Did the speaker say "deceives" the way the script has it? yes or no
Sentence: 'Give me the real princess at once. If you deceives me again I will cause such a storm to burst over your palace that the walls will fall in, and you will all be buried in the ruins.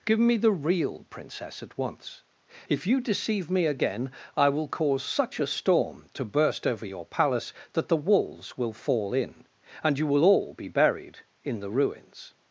no